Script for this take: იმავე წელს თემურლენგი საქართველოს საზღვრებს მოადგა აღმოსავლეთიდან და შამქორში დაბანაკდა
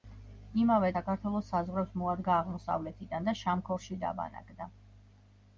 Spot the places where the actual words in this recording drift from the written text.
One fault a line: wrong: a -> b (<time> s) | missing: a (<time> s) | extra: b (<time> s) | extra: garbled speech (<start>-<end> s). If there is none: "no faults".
missing: წელს თემურლენგი (0.9 s)